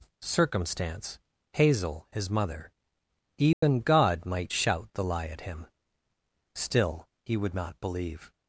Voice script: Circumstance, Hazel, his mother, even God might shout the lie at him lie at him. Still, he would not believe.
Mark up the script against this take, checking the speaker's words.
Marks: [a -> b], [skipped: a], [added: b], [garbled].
Circumstance, Hazel, his mother, even God might shout the lie at him [skipped: lie at him.] Still, he would not believe.